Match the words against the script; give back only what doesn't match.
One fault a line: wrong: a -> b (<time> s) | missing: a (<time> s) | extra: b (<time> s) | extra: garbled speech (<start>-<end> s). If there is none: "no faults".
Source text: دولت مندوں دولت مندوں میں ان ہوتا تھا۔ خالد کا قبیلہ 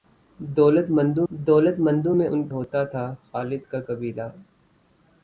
no faults